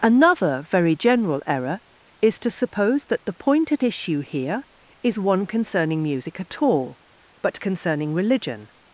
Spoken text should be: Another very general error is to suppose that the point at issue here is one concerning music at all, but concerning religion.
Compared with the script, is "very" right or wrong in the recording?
right